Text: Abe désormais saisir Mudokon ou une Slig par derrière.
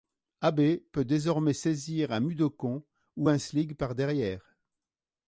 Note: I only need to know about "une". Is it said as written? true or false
false